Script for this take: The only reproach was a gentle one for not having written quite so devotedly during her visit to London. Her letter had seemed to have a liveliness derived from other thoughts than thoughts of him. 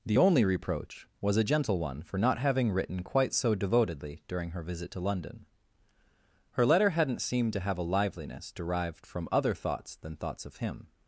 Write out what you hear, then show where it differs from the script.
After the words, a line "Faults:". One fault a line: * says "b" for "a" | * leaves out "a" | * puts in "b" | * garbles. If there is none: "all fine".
The only reproach was a gentle one for not having written quite so devotedly during her visit to London. Her letter hadn't seemed to have a liveliness derived from other thoughts than thoughts of him.
Faults:
* says "hadn't" for "had"